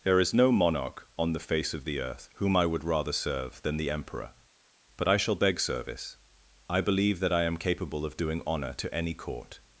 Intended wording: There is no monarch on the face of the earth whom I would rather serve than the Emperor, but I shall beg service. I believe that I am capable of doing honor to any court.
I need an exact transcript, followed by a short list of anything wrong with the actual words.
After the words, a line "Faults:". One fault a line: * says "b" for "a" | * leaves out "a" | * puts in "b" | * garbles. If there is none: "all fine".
There is no monarch on the face of the earth whom I would rather serve than the Emperor, but I shall beg service. I believe that I am capable of doing honor to any court.
Faults:
all fine